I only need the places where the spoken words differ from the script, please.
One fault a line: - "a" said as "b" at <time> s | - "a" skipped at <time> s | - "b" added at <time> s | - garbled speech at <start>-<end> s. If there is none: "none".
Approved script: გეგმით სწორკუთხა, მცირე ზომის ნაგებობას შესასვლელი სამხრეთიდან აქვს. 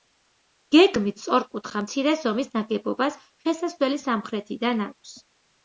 none